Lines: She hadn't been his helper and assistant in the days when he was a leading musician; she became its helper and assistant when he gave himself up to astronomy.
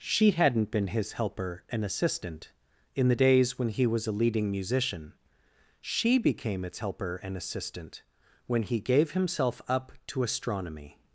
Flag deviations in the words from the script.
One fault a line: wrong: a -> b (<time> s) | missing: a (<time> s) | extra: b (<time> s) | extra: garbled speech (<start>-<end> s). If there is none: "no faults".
no faults